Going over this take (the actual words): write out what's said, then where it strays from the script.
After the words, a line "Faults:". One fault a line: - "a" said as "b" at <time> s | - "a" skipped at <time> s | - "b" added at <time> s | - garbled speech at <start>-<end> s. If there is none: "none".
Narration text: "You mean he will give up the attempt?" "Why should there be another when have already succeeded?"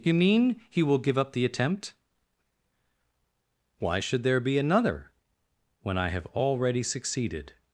"You mean he will give up the attempt?" "Why should there be another when I have already succeeded?"
Faults:
- "I" added at 6.0 s